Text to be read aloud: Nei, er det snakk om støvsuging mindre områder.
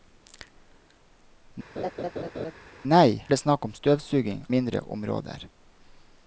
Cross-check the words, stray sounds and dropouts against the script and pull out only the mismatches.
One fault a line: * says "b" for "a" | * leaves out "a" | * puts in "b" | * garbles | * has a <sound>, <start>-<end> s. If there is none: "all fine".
* has a laugh, 1.8-2.5 s